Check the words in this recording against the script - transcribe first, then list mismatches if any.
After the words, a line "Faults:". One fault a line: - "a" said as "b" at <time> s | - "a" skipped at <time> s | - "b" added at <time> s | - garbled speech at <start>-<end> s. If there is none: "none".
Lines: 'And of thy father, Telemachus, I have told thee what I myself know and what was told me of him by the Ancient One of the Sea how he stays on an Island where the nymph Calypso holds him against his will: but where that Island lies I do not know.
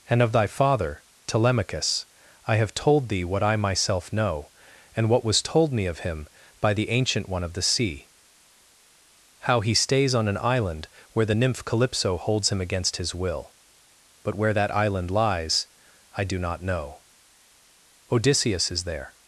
'And of thy father, Telemachus, I have told thee what I myself know and what was told me of him by the Ancient One of the Sea how he stays on an Island where the nymph Calypso holds him against his will: but where that Island lies I do not know. Odysseus is there
Faults:
- "Odysseus is there" added at 18.1 s